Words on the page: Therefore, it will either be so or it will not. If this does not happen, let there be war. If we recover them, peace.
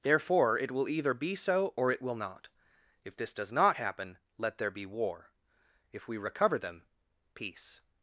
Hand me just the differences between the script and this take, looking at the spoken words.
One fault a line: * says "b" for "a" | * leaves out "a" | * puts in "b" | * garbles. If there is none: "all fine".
all fine